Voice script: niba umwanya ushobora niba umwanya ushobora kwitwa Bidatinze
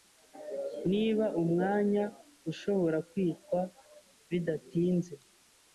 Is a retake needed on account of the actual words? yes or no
yes